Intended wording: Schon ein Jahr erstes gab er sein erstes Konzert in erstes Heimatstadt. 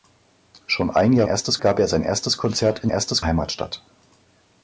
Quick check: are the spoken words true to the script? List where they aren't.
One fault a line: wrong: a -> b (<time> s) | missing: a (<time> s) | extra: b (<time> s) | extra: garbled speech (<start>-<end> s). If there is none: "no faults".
no faults